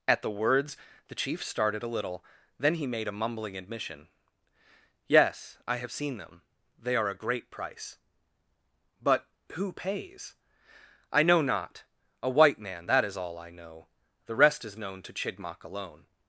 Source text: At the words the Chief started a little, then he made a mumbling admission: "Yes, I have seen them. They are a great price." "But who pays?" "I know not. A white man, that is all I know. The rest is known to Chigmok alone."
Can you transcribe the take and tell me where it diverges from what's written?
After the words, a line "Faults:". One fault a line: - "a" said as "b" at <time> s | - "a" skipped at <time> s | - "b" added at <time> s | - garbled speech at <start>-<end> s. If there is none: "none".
At the words the Chief started a little, then he made a mumbling admission: "Yes, I have seen them. They are a great price." "But who pays?" "I know not. A white man, that is all I know. The rest is known to Chigmok alone."
Faults:
none